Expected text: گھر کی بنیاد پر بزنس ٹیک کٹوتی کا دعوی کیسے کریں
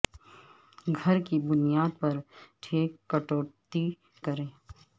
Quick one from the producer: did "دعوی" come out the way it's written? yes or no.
no